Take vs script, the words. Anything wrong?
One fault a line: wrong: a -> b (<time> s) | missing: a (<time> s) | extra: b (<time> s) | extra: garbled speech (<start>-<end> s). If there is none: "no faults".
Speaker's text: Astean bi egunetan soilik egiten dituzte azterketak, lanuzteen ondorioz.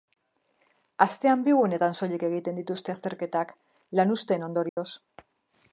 no faults